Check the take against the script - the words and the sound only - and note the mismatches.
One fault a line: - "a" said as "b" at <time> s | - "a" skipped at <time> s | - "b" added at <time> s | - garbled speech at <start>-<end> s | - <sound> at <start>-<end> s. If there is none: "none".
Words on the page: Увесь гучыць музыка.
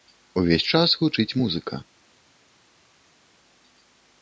- "час" added at 0.7 s